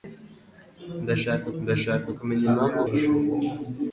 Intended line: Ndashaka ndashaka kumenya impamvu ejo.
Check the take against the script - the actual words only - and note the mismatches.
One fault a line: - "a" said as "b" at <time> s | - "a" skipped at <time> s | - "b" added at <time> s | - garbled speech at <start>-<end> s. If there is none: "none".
none